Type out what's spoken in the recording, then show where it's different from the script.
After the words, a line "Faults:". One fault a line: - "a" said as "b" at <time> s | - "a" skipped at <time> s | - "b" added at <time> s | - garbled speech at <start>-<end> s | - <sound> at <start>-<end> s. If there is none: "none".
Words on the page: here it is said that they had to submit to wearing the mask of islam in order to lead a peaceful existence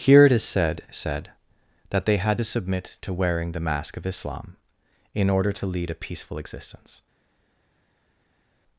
here it is said said that they had to submit to wearing the mask of islam in order to lead a peaceful existence
Faults:
- "said" added at 0.9 s